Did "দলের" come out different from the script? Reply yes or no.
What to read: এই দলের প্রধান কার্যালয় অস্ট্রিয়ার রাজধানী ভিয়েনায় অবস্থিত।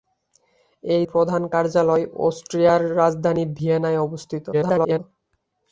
yes